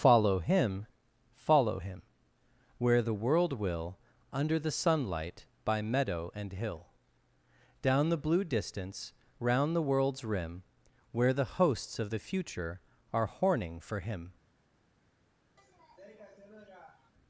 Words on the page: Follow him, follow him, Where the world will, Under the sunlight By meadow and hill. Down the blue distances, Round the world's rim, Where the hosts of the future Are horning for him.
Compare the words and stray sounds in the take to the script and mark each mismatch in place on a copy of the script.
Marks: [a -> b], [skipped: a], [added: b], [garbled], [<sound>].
Follow him, follow him, Where the world will, Under the sunlight By meadow and hill. Down the blue [distances, -> distance] Round the world's rim, Where the hosts of the future Are horning for him. [sniff]